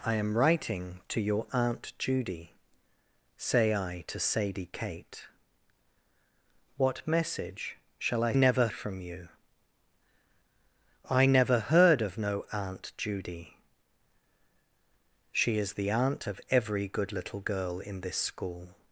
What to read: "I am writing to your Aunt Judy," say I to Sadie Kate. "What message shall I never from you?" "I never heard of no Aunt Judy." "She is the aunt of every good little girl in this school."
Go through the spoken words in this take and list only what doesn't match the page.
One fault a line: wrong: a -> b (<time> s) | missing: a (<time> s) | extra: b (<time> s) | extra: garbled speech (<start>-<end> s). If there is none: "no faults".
no faults